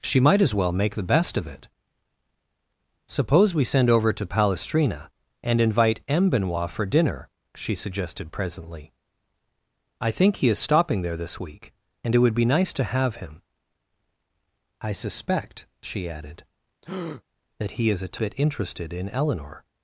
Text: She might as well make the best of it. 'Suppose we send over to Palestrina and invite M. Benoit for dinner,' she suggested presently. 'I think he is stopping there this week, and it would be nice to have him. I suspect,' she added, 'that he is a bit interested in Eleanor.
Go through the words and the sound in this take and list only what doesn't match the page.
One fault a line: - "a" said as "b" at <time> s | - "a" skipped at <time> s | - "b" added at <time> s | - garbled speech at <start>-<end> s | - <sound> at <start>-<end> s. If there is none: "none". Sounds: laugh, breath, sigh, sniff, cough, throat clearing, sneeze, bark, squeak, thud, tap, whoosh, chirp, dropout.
- breath at 16.8-17.2 s